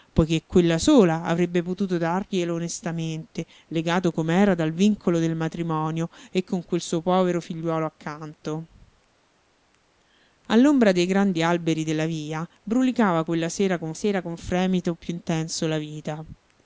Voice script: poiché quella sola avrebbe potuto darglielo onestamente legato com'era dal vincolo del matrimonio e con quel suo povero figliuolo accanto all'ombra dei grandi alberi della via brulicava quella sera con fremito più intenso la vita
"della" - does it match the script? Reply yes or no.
yes